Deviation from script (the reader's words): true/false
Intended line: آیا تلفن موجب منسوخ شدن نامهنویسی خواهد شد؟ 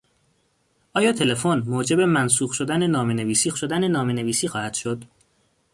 true